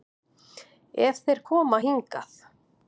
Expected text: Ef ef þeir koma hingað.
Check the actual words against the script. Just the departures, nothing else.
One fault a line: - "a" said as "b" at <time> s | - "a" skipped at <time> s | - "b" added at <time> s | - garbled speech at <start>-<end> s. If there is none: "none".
- "ef" skipped at 1.2 s